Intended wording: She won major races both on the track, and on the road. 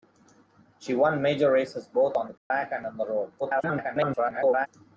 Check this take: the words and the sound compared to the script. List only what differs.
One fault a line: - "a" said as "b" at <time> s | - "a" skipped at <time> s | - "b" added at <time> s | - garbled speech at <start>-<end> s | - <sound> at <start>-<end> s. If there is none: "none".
- dropout at 2.4-2.5 s
- garbled speech at 3.4-4.7 s